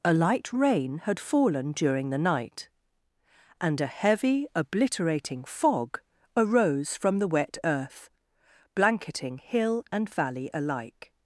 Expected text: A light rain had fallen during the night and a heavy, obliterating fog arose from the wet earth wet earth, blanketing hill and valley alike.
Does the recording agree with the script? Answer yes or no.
no